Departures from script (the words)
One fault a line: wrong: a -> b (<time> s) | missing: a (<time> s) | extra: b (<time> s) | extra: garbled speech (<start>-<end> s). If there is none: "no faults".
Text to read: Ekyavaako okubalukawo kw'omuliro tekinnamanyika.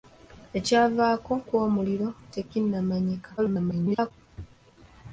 missing: okubalukawo (1.3 s)
extra: garbled speech (3.4-4.1 s)